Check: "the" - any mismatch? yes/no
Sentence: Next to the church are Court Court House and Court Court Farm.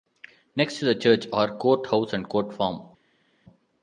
no